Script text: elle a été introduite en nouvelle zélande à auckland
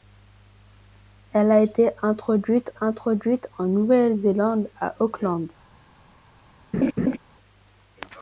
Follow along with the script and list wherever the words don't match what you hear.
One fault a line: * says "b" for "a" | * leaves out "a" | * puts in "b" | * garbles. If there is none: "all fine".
* puts in "introduite"